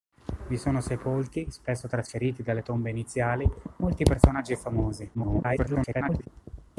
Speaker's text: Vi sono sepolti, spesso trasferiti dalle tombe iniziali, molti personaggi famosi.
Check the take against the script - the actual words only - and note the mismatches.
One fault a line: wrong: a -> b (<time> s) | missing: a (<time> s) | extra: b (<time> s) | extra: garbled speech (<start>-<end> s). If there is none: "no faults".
extra: garbled speech (5.1-6.3 s)